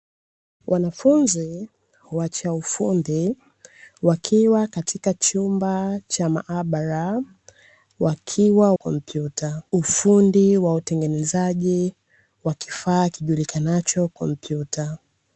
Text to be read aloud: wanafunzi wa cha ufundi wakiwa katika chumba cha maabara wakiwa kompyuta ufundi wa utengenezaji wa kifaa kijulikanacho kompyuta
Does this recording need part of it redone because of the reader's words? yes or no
no